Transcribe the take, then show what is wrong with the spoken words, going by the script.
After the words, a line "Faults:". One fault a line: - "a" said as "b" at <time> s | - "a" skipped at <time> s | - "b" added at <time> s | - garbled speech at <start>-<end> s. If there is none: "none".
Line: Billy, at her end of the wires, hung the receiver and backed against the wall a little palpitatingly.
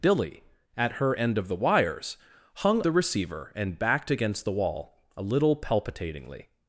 Billy, at her end of the wires, hung the receiver and backed against the wall a little palpitatingly.
Faults:
none